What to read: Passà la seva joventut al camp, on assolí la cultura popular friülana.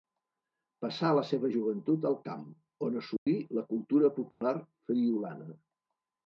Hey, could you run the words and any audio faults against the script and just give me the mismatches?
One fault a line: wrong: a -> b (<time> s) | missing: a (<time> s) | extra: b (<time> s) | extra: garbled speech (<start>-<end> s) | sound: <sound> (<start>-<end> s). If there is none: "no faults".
sound: dropout (3.2-3.3 s)
sound: dropout (4.3-4.4 s)